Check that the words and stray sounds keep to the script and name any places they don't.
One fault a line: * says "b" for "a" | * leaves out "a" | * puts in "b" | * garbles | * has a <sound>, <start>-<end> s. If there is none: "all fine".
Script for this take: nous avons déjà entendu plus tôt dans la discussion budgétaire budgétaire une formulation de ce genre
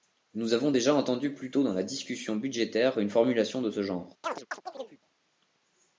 * leaves out "budgétaire"
* has a chirp, 4.2-5.0 s